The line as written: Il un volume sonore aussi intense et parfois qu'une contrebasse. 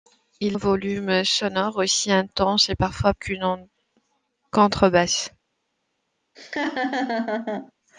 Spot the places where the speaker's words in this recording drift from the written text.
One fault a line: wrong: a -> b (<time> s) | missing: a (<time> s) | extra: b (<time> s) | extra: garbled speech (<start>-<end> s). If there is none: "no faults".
no faults